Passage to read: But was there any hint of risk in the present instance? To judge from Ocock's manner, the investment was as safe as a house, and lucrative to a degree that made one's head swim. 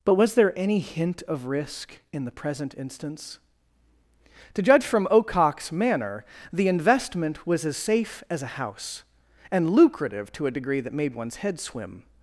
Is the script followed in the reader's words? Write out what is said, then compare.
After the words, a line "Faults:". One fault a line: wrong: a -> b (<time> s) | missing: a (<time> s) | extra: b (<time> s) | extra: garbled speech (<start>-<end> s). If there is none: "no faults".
But was there any hint of risk in the present instance? To judge from Ocock's manner, the investment was as safe as a house, and lucrative to a degree that made one's head swim.
Faults:
no faults